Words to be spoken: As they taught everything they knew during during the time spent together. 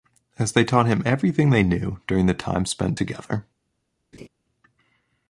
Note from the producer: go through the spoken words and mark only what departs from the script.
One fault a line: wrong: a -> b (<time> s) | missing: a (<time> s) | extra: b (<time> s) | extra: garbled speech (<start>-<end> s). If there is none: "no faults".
extra: him (0.9 s)
missing: during (2.2 s)